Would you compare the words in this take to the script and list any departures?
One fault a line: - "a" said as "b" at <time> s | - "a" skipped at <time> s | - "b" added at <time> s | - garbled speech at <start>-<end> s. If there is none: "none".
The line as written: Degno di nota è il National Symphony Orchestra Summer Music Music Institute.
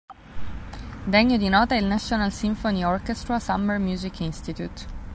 - "Music" skipped at 4.2 s